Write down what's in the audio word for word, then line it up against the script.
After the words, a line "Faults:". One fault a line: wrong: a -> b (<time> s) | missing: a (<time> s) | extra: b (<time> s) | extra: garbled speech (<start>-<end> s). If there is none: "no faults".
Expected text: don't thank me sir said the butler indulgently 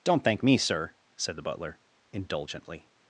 don't thank me sir said the butler indulgently
Faults:
no faults